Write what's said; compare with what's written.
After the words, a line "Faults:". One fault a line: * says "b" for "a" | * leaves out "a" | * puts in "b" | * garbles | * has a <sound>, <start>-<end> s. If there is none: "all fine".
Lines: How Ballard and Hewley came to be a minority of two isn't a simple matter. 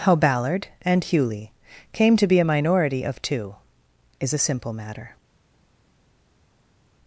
How Ballard and Hewley came to be a minority of two is a simple matter.
Faults:
* says "is" for "isn't"